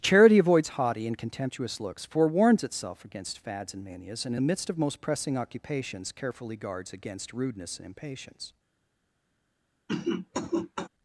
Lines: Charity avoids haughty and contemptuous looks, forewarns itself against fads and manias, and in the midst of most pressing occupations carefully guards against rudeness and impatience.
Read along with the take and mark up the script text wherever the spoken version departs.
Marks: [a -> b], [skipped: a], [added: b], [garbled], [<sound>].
Charity avoids haughty and contemptuous looks, forewarns itself against fads and manias, and [skipped: in] the midst of most pressing occupations carefully guards against rudeness and impatience. [cough]